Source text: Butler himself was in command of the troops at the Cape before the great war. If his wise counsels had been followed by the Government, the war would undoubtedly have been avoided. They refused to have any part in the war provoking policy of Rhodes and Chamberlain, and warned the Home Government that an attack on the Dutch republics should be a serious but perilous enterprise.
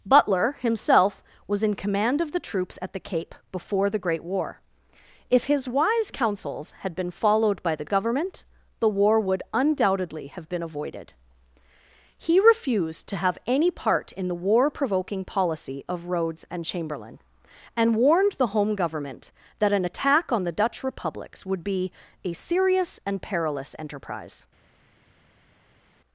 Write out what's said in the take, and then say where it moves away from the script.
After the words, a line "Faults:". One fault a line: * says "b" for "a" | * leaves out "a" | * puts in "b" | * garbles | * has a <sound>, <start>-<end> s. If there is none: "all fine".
Butler himself was in command of the troops at the Cape before the great war. If his wise counsels had been followed by the Government, the war would undoubtedly have been avoided. He refused to have any part in the war provoking policy of Rhodes and Chamberlain, and warned the Home Government that an attack on the Dutch republics would be a serious and perilous enterprise.
Faults:
* says "He" for "They"
* says "would" for "should"
* says "and" for "but"